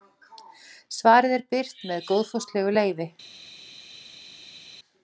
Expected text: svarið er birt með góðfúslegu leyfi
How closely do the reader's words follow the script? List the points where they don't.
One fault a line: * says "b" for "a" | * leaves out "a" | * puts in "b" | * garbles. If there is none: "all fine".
all fine